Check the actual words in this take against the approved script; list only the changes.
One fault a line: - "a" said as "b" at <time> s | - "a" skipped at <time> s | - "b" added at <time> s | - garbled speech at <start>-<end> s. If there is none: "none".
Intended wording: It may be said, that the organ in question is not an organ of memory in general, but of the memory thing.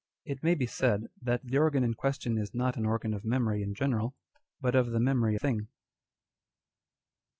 none